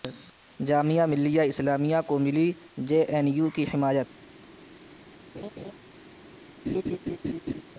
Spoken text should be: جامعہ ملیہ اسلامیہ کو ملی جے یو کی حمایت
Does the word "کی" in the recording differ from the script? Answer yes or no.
no